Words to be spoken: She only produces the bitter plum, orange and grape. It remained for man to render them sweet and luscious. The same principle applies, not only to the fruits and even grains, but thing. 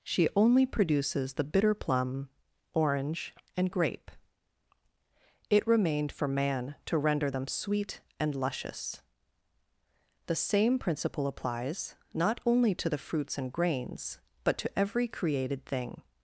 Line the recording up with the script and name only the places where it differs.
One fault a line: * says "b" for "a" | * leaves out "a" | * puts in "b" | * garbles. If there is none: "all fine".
* leaves out "even"
* puts in "to every created"